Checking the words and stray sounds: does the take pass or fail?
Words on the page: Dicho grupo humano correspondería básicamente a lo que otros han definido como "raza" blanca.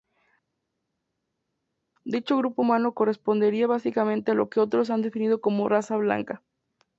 pass